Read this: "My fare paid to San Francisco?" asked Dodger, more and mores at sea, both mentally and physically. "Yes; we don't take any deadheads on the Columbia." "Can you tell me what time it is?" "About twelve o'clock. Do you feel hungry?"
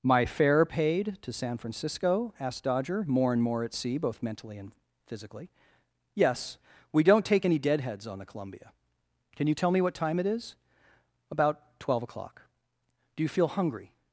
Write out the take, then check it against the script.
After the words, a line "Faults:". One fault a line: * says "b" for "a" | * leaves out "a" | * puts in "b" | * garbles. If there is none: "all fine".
"My fare paid to San Francisco?" asked Dodger, more and more at sea, both mentally and physically. "Yes; we don't take any deadheads on the Columbia." "Can you tell me what time it is?" "About twelve o'clock. Do you feel hungry?"
Faults:
* says "more" for "mores"